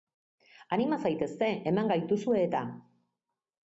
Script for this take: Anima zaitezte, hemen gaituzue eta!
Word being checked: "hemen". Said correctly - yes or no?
yes